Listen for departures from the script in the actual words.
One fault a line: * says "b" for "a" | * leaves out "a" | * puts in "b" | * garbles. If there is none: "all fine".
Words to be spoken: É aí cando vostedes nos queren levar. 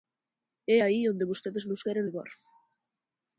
* says "onde" for "cando"